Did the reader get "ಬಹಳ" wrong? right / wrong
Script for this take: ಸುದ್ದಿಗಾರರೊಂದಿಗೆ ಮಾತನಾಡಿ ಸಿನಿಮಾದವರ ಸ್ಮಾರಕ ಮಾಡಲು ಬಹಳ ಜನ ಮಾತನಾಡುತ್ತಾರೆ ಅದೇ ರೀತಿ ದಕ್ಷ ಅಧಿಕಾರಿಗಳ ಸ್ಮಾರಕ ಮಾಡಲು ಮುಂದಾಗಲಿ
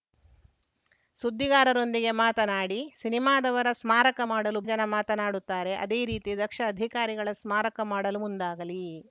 wrong